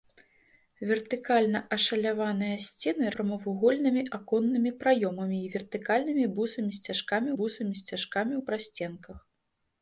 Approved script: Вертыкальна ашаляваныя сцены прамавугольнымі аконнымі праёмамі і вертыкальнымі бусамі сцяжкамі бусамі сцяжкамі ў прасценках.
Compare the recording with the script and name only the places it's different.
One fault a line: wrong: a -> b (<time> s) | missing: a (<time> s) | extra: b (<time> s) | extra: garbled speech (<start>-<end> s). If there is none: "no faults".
no faults